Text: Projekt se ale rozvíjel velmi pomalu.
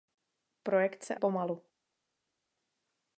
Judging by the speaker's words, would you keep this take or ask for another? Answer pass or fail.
fail